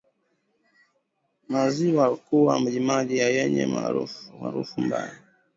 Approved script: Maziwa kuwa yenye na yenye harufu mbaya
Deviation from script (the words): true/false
true